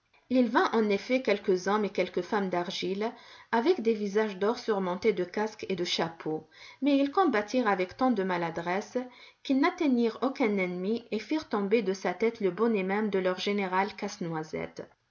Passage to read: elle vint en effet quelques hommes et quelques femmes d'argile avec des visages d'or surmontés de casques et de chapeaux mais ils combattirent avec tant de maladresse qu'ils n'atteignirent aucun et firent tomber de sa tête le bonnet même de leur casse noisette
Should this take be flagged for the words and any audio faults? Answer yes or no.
yes